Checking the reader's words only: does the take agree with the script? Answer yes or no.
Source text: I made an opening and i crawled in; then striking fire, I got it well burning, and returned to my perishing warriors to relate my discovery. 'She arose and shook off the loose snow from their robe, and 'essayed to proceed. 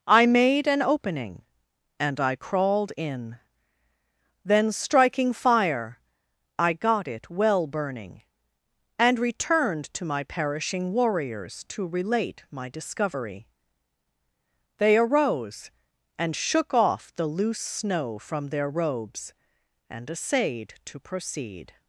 no